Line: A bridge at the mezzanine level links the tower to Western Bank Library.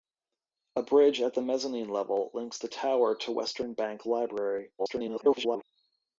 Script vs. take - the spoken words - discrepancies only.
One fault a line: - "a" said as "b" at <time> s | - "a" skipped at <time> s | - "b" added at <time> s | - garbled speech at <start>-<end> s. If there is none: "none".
- garbled speech at 4.8-5.6 s